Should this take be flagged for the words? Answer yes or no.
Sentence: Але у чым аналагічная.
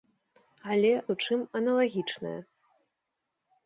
no